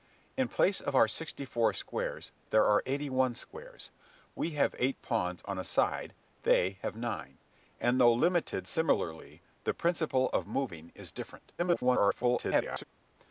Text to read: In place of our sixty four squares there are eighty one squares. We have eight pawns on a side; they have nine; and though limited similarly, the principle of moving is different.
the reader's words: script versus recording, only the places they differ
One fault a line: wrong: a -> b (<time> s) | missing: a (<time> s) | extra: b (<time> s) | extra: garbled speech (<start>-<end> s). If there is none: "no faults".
extra: garbled speech (11.6-12.8 s)